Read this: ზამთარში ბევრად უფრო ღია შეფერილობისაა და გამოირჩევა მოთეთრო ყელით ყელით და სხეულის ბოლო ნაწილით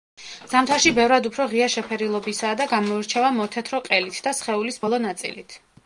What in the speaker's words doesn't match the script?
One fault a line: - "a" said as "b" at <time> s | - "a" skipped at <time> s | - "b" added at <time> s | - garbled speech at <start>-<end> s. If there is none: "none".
- "ყელით" skipped at 4.2 s